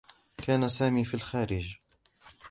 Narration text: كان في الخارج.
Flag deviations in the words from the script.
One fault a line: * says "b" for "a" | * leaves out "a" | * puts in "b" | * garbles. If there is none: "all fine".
* puts in "سامي"